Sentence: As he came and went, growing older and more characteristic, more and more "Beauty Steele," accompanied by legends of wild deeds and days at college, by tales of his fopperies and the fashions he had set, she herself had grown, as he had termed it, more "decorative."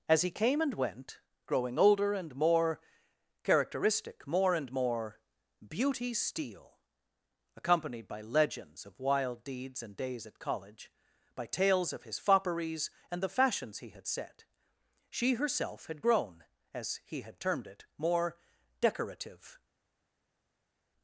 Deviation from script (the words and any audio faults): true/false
false